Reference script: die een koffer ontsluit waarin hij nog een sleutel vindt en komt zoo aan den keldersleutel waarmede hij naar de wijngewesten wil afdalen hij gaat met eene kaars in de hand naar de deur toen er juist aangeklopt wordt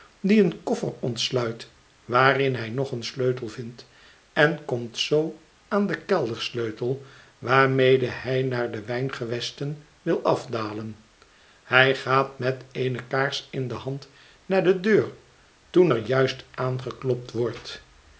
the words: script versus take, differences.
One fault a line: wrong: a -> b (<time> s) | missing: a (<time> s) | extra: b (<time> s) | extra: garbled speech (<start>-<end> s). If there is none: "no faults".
no faults